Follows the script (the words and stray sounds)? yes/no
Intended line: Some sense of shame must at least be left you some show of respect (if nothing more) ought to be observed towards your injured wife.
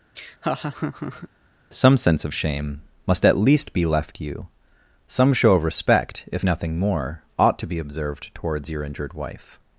no